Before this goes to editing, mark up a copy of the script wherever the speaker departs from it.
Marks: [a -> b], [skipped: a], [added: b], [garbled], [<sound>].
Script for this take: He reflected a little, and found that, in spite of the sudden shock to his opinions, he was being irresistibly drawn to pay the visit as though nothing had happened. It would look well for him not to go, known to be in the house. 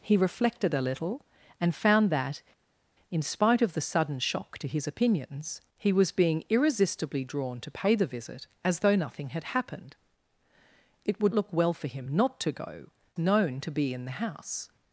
He reflected a little, and found that, in spite of the sudden shock to his opinions, he was being irresistibly drawn to pay the visit as though nothing had happened. It would look well for him not to go, known to be in the house.